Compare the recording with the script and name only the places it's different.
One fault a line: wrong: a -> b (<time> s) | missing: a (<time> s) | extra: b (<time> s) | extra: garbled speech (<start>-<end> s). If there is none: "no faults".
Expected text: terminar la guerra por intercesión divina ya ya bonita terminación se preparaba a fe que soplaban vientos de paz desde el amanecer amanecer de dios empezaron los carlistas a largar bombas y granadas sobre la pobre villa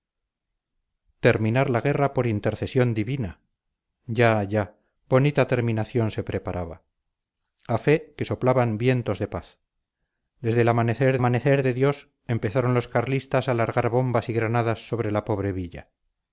no faults